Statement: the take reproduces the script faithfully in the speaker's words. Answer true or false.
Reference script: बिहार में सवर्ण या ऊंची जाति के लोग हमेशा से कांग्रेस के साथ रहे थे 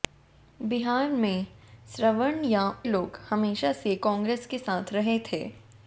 false